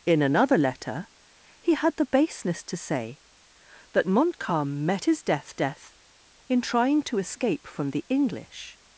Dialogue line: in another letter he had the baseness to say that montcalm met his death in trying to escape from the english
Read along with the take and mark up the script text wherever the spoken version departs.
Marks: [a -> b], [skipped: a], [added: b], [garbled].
in another letter he had the baseness to say that montcalm met his death [added: death] in trying to escape from the english